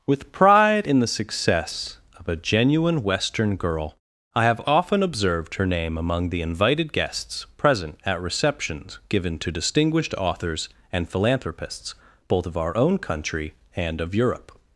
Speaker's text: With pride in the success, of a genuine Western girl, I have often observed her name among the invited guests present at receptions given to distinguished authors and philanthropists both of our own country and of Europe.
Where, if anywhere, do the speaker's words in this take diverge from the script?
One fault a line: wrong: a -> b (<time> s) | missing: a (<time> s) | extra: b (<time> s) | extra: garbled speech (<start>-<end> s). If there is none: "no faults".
no faults